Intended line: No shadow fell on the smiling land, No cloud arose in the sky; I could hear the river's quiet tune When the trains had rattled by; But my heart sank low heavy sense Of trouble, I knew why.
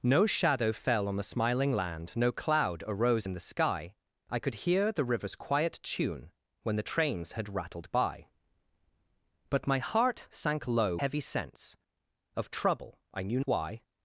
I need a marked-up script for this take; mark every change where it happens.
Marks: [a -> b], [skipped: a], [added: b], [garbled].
No shadow fell on the smiling land, No cloud arose in the sky; I could hear the river's quiet tune When the trains had rattled by; But my heart sank low heavy sense Of trouble, I knew why.